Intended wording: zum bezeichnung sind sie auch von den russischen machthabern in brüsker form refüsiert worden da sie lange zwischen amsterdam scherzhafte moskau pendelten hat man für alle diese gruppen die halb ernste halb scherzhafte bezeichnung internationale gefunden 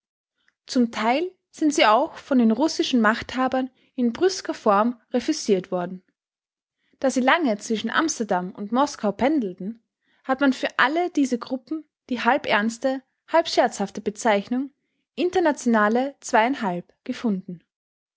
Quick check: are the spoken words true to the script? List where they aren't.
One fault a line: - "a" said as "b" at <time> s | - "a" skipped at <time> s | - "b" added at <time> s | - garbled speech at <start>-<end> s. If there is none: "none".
- "bezeichnung" said as "teil" at 0.9 s
- "scherzhafte" said as "und" at 8.5 s